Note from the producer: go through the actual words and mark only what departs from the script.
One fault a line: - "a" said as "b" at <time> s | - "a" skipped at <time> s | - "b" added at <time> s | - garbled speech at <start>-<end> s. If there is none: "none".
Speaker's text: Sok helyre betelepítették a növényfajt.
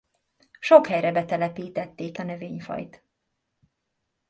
none